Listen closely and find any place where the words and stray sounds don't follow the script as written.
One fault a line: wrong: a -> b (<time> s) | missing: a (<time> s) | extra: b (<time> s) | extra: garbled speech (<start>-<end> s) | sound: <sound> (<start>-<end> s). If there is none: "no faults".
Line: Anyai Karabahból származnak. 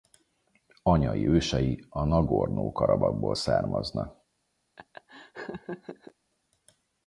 extra: ősei a Nagorno (1.3 s)
sound: laugh (4.8-6.1 s)